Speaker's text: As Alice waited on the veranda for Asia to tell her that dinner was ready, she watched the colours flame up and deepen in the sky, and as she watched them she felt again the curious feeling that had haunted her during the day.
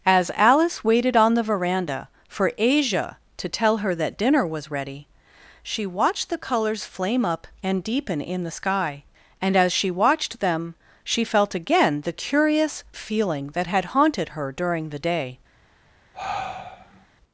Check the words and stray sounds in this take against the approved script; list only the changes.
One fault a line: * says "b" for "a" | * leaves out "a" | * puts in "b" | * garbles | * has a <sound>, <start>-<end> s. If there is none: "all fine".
* has a sigh, 16.1-17.1 s